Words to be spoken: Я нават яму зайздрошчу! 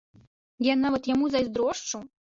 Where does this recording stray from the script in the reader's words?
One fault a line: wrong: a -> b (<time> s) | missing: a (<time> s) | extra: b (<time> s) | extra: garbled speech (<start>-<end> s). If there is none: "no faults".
no faults